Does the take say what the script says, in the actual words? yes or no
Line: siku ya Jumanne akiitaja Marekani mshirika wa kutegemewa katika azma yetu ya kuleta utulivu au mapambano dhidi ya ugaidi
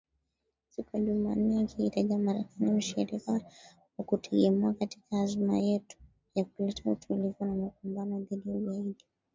no